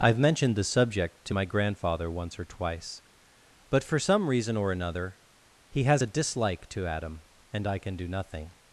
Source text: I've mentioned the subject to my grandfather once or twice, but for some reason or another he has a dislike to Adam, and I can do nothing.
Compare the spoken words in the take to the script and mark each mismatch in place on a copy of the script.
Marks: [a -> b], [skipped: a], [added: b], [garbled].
I've mentioned the subject to my grandfather once or twice, but for some reason or another he has a dislike to Adam, and I can do nothing.